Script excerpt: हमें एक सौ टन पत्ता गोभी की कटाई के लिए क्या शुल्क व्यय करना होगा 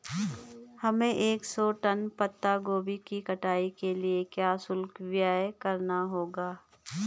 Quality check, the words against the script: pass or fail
pass